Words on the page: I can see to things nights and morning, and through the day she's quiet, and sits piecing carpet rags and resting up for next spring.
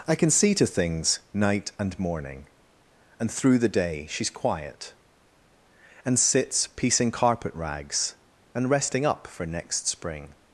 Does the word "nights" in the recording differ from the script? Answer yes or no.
yes